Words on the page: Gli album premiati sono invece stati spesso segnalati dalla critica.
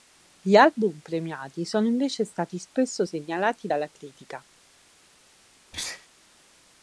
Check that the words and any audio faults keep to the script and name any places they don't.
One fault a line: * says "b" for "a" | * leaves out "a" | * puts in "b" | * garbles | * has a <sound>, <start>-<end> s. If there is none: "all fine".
* has a sneeze, 5.7-6.1 s